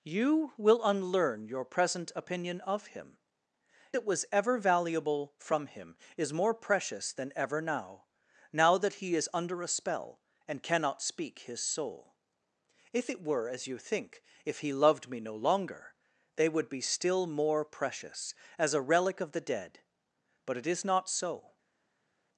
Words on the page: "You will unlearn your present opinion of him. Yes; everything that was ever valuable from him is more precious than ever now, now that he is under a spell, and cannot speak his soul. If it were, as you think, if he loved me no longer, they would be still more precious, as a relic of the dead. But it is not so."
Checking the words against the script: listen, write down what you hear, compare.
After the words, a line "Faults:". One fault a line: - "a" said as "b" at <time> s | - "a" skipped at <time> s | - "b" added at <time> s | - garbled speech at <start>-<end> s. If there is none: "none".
"You will unlearn your present opinion of him. That was ever valuable from him is more precious than ever now, now that he is under a spell, and cannot speak his soul. If it were, as you think, if he loved me no longer, they would be still more precious, as a relic of the dead. But it is not so."
Faults:
- "Yes everything" skipped at 3.2 s